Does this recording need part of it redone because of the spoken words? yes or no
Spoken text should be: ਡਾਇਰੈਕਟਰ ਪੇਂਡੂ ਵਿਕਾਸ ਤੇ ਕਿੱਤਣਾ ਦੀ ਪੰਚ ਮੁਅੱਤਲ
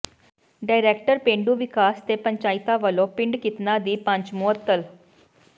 yes